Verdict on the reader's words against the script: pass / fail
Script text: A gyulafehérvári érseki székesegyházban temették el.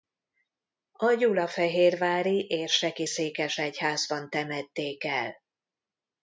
pass